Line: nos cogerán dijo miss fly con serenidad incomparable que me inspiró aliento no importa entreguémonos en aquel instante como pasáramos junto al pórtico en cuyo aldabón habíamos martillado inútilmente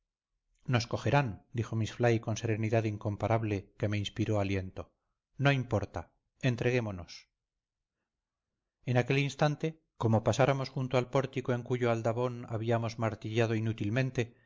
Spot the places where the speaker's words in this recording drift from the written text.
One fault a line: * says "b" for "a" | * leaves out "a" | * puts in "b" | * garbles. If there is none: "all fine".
all fine